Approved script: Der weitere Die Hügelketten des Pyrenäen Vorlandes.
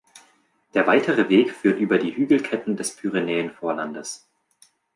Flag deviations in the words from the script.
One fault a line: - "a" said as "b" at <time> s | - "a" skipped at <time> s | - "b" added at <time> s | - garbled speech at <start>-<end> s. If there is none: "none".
- "Weg führt über" added at 1.3 s